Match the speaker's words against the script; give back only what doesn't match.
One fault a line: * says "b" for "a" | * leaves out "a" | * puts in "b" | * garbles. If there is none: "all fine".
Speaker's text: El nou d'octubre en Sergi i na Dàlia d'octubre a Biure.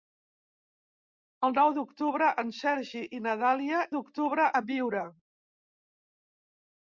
all fine